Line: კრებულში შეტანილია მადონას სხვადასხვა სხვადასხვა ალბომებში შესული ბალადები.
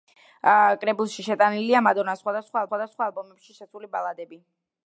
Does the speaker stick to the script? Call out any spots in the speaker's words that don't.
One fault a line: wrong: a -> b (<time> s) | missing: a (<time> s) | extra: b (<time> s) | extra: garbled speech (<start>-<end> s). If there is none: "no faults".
no faults